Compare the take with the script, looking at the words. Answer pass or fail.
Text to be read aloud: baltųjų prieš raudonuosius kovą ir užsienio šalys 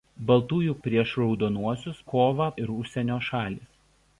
pass